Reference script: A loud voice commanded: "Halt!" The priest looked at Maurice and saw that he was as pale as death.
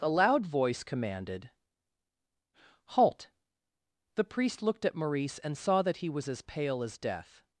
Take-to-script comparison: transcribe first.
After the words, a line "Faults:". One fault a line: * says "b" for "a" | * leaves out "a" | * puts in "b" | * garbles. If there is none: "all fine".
A loud voice commanded: "Halt!" The priest looked at Maurice and saw that he was as pale as death.
Faults:
all fine